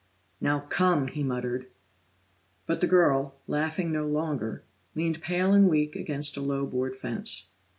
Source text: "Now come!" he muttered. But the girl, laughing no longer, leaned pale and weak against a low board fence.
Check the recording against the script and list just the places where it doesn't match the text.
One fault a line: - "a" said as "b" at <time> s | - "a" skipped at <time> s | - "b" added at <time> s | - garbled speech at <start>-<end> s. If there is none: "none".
none